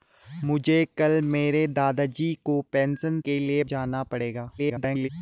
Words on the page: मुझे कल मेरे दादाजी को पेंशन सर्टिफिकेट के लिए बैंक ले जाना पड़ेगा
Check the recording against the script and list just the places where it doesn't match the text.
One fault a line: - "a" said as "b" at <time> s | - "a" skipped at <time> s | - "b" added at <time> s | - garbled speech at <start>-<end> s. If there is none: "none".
- "सर्टिफिकेट" skipped at 3.2 s
- "बैंक ले" skipped at 3.6 s
- garbled speech at 4.6-5.1 s